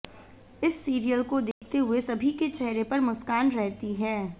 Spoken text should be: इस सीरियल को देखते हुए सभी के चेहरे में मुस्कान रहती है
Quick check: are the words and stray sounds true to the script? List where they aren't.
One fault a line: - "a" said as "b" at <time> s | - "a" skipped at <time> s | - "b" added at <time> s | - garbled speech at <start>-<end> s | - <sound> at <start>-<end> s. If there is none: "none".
- dropout at 1.5-1.6 s
- "में" said as "पर" at 2.8 s